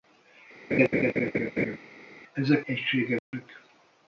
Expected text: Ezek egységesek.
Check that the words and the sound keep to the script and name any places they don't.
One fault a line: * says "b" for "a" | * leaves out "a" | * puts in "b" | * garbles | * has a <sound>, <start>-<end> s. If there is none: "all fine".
* has a laugh, 0.7-1.8 s
* has a dropout, 3.2-3.3 s